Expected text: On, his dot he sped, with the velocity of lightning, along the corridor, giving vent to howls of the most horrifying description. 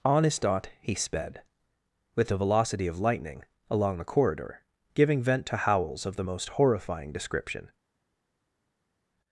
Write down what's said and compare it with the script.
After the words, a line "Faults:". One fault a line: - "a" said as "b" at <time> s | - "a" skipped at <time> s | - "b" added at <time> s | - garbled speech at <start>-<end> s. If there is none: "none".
On, his dot he sped, with the velocity of lightning, along the corridor, giving vent to howls of the most horrifying description.
Faults:
none